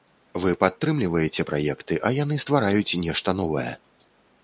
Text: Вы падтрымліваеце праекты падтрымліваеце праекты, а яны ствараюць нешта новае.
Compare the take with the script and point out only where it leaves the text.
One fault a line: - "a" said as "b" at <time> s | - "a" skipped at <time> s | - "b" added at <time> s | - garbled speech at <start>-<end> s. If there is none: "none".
- "падтрымліваеце праекты" skipped at 2.0 s